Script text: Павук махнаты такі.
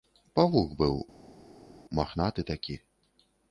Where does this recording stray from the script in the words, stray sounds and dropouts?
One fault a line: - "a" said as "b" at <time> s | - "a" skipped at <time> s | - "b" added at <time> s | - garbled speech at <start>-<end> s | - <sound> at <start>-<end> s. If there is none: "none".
- "быў" added at 0.8 s